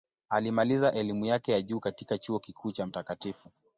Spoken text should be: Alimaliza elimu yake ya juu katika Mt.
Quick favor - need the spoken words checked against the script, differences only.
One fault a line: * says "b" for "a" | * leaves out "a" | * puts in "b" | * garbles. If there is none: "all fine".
* puts in "Chuo Kikuu cha"